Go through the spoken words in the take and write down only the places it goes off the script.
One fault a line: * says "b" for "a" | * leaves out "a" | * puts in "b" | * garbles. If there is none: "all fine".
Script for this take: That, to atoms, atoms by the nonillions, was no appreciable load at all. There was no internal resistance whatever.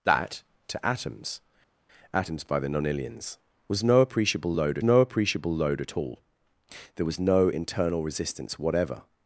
* puts in "no appreciable load"